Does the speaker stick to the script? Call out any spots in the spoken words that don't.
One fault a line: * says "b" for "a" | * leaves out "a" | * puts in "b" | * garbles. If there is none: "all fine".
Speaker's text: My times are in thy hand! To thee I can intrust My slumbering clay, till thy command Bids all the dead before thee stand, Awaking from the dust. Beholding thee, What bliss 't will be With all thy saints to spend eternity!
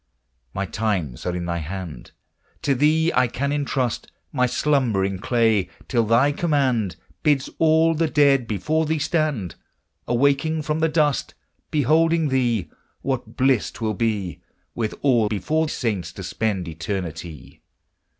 * says "before" for "thy"